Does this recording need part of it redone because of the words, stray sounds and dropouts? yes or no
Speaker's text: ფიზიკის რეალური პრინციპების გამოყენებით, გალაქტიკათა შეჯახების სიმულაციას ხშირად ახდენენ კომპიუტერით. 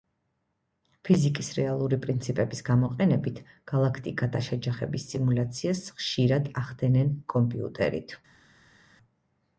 no